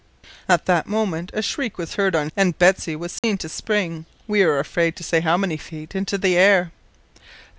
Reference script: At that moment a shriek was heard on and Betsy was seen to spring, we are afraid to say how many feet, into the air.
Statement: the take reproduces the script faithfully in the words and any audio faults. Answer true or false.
false